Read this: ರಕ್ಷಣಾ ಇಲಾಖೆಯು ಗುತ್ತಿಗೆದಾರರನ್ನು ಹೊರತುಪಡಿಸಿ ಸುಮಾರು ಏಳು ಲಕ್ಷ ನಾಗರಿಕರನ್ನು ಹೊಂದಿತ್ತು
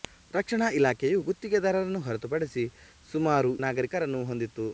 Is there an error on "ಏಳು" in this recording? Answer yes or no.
yes